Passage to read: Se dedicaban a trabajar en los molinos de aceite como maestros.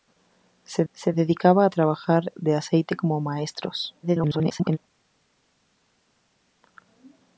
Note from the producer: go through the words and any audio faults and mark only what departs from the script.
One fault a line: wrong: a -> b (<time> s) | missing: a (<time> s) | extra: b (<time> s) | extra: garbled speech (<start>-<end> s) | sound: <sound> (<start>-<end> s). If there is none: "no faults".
extra: se (0.9 s)
missing: en los molinos (2.3 s)
extra: garbled speech (4.0-4.8 s)